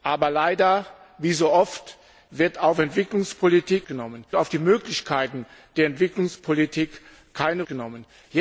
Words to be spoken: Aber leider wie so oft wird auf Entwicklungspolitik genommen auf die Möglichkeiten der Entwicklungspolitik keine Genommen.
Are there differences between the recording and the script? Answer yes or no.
no